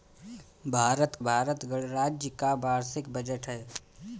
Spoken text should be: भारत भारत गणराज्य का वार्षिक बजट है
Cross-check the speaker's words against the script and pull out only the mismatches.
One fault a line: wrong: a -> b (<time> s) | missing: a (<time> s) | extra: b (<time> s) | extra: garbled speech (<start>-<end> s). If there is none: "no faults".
no faults